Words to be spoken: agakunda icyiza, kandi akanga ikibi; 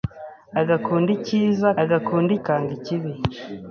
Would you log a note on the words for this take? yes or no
yes